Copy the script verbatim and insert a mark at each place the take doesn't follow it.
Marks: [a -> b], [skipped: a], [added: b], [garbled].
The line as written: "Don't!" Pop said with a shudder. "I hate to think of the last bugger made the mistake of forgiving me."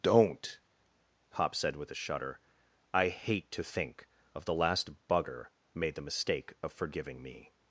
"Don't!" Pop said with a shudder. "I hate to think of the last bugger made the mistake of forgiving me."